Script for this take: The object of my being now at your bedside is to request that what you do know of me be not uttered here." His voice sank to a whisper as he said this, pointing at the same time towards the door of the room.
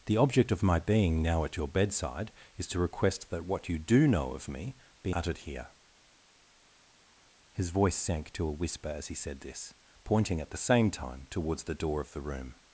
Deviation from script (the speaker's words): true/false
true